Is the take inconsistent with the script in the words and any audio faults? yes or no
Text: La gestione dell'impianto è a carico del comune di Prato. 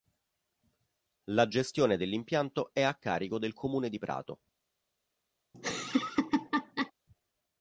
yes